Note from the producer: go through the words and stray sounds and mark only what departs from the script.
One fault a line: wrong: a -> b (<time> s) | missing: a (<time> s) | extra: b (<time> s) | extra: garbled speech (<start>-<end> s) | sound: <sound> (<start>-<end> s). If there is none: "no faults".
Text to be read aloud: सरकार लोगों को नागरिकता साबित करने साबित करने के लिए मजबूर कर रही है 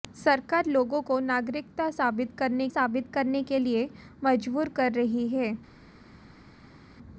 no faults